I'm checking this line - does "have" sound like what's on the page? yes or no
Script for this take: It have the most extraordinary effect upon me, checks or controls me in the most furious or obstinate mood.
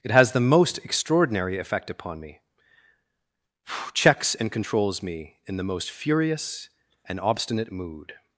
no